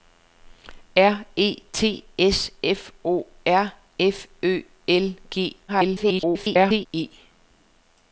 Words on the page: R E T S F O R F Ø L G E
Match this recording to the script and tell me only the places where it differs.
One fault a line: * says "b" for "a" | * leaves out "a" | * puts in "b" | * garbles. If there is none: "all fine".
* garbles